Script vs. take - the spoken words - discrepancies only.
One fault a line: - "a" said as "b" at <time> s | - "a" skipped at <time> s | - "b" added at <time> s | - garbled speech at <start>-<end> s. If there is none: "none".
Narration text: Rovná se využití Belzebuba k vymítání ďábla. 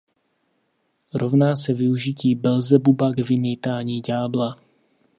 none